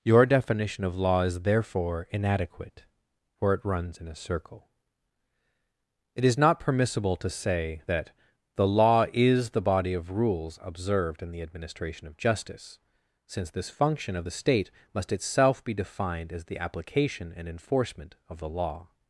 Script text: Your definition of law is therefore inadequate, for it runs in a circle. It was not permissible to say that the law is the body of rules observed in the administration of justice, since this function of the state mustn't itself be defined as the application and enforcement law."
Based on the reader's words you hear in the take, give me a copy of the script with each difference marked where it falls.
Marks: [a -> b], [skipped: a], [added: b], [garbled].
Your definition of law is therefore inadequate, for it runs in a circle. It [was -> is] not permissible to say that the law is the body of rules observed in the administration of justice, since this function of the state [mustn't -> must] itself be defined as the application and enforcement [added: of the] law."